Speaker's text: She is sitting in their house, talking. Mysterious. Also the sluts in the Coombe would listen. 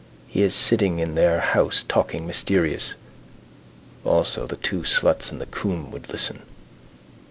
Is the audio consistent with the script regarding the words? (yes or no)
no